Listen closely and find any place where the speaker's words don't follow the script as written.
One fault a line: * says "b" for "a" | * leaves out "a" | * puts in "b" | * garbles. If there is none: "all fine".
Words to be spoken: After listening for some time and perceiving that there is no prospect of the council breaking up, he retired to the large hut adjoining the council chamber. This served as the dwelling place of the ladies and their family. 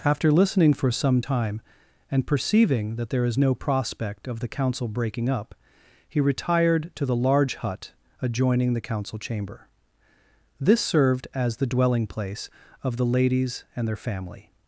all fine